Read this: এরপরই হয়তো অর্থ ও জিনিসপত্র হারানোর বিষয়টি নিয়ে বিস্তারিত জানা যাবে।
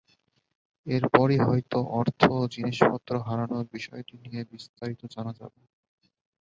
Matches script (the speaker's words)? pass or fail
pass